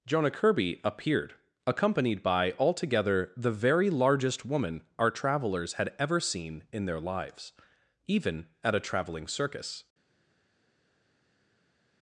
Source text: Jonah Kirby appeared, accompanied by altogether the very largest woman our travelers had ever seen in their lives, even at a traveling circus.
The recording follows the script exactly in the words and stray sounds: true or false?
true